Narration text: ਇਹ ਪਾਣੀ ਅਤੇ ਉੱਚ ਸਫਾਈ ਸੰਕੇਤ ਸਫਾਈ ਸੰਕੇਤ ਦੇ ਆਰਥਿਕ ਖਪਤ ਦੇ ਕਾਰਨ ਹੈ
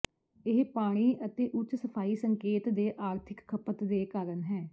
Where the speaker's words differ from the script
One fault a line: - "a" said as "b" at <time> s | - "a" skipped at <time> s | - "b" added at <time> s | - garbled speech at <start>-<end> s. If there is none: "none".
- "ਸਫਾਈ ਸੰਕੇਤ" skipped at 2.7 s